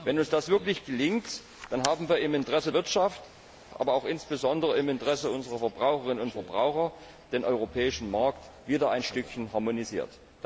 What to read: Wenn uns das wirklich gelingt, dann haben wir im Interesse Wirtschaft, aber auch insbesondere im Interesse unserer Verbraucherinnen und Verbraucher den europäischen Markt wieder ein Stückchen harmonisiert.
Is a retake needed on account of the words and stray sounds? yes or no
no